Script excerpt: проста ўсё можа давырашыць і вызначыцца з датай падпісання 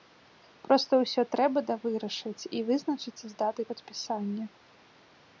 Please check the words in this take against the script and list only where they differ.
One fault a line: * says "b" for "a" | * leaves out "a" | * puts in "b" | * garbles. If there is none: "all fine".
* says "трэба" for "можа"